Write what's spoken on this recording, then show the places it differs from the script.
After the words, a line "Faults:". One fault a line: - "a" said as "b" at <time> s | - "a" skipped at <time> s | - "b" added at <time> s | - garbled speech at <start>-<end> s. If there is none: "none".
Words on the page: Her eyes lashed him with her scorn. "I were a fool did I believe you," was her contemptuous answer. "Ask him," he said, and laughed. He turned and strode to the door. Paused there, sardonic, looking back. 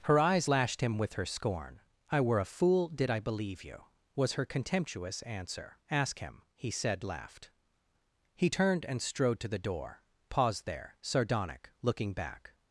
Her eyes lashed him with her scorn. "I were a fool did I believe you," was her contemptuous answer. "Ask him," he said, laughed. He turned and strode to the door. Paused there, sardonic, looking back.
Faults:
- "and" skipped at 7.0 s